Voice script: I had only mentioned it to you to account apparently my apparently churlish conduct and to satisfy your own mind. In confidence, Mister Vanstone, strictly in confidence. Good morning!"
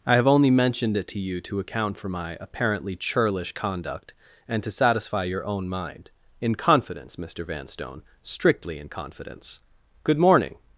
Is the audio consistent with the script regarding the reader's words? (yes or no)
no